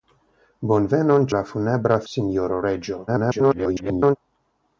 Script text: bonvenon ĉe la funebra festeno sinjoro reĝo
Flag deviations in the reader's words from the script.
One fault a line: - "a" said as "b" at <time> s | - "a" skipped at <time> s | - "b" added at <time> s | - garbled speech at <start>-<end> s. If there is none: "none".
- "ĉe" skipped at 1.3 s
- "festeno" skipped at 2.0 s
- garbled speech at 3.1-4.2 s